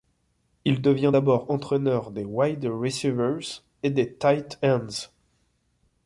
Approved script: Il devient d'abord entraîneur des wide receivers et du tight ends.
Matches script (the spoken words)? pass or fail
fail